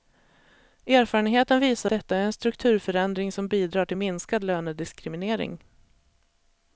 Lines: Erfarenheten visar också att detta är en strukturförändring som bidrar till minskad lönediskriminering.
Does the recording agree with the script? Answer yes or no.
no